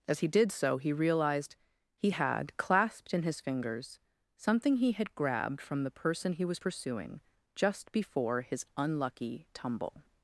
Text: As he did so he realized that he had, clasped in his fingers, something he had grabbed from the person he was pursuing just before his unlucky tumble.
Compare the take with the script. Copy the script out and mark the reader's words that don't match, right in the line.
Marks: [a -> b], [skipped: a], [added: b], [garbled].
As he did so he realized [skipped: that] he had, clasped in his fingers, something he had grabbed from the person he was pursuing just before his unlucky tumble.